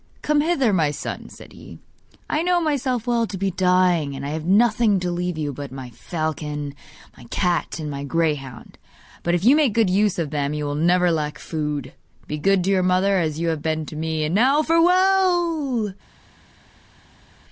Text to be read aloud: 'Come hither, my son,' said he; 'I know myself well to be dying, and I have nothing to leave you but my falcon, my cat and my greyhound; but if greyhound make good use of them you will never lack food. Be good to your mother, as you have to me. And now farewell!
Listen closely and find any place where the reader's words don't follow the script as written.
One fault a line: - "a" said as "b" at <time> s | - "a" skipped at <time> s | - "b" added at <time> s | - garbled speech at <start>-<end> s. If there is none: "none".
- "greyhound" said as "you" at 9.4 s
- "been" added at 13.6 s